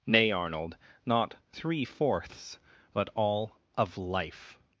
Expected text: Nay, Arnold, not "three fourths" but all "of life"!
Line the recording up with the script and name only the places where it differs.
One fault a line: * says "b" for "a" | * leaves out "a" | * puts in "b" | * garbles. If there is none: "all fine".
all fine